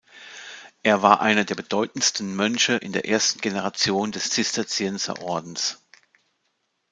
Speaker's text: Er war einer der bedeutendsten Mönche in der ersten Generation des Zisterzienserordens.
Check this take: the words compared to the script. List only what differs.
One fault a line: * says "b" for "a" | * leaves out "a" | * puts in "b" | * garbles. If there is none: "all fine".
all fine